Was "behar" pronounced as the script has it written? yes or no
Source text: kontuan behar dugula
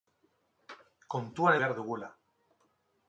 yes